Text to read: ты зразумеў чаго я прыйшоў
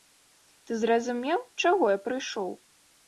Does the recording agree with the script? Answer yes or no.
yes